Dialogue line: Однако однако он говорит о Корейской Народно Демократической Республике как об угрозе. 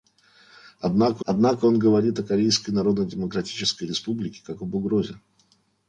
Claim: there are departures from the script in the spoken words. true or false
false